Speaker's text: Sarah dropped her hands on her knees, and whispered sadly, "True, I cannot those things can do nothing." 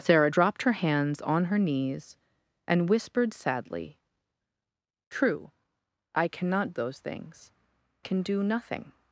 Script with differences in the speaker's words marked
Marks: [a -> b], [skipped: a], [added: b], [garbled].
Sarah dropped her hands on her knees, and whispered sadly, "True, I cannot those things can do nothing."